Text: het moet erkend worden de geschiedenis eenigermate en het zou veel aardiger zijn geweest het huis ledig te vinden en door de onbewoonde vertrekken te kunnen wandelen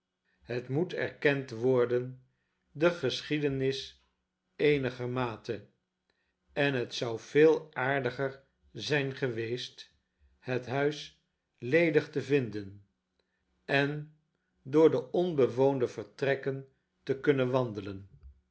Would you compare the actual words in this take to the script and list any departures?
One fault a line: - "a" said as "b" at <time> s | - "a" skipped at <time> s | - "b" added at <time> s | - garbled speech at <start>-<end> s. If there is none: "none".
none